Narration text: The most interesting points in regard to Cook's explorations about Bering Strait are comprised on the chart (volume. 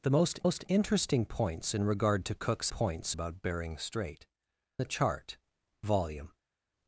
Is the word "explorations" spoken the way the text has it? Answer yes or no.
no